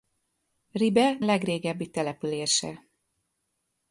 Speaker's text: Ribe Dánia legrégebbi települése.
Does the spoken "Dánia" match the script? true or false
false